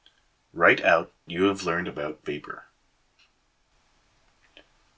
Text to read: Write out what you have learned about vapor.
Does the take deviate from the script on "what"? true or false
true